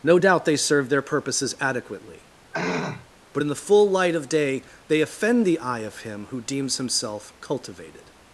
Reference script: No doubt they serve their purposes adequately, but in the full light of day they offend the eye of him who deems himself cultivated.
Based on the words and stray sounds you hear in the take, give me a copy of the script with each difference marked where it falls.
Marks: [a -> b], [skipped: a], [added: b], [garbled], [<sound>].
No doubt they serve their purposes adequately, [throat clearing] but in the full light of day they offend the eye of him who deems himself cultivated.